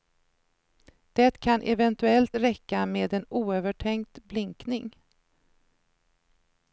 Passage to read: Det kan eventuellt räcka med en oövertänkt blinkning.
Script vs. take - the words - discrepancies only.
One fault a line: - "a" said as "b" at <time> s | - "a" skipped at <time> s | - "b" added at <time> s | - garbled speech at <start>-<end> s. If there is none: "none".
none